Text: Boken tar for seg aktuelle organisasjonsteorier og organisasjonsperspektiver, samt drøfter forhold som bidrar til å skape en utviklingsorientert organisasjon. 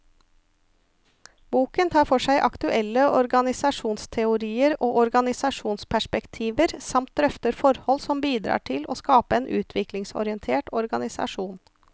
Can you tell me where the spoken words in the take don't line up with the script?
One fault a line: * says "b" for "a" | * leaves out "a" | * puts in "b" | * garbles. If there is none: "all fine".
all fine